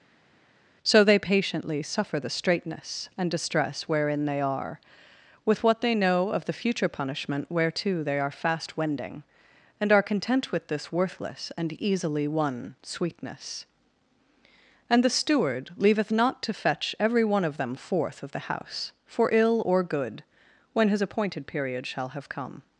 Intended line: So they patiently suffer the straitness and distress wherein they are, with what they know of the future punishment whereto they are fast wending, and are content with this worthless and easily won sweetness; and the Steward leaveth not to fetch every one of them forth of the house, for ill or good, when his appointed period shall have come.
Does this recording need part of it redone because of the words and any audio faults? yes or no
no